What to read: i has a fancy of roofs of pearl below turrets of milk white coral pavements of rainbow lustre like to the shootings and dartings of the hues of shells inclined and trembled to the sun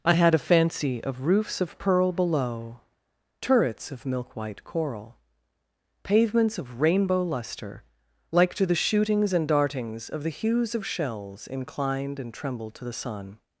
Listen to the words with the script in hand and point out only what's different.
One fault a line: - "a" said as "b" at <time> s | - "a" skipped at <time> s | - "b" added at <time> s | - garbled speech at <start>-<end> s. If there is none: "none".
- "has" said as "had" at 0.1 s